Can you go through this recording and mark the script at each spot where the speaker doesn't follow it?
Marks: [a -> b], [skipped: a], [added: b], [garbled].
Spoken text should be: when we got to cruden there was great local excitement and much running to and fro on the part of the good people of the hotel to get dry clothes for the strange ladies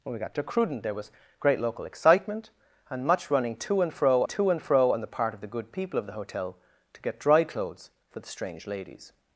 when we got to cruden there was great local excitement and much running to and fro [added: to and fro] on the part of the good people of the hotel to get dry clothes for the strange ladies